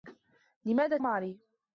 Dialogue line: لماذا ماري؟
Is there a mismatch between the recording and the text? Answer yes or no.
no